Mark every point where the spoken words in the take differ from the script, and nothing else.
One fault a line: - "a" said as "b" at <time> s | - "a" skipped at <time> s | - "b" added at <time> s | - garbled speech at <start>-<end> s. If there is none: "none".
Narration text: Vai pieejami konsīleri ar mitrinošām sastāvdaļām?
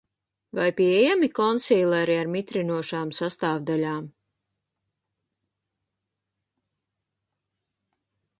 none